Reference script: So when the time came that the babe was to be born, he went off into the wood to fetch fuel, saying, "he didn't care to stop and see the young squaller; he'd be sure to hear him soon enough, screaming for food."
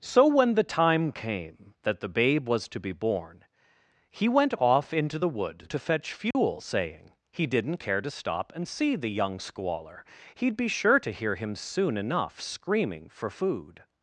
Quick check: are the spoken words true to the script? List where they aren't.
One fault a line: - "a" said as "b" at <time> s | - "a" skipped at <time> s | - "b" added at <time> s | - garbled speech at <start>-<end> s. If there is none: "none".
none